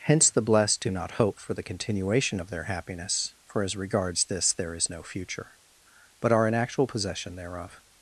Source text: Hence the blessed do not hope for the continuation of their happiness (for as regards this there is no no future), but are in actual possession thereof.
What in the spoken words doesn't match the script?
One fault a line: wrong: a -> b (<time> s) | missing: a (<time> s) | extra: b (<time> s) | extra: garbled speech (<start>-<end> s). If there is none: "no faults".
missing: no (5.0 s)